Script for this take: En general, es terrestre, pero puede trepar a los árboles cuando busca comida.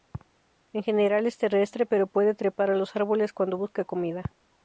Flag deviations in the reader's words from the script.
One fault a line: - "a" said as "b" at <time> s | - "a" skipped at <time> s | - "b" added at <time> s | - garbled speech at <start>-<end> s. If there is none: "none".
none